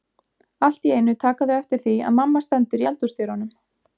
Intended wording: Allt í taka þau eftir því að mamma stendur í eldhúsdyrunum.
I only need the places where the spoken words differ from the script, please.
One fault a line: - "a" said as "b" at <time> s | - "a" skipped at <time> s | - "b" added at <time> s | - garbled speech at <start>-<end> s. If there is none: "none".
- "einu" added at 0.9 s